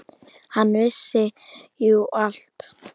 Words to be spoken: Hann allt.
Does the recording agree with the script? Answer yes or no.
no